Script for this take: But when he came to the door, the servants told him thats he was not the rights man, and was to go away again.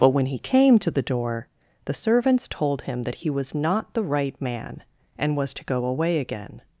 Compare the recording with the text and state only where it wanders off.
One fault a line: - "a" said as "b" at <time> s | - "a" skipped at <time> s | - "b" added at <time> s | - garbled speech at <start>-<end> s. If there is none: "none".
- "thats" said as "that" at 3.0 s
- "rights" said as "right" at 4.0 s